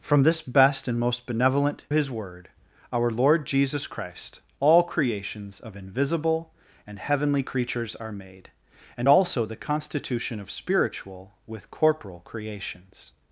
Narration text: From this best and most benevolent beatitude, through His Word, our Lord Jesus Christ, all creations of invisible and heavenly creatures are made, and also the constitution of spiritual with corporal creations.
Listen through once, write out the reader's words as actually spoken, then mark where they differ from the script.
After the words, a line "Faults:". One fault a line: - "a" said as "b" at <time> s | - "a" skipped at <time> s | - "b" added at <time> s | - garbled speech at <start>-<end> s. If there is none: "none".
From this best and most benevolent His Word, our Lord Jesus Christ, all creations of invisible and heavenly creatures are made, and also the constitution of spiritual with corporal creations.
Faults:
- "beatitude through" skipped at 1.8 s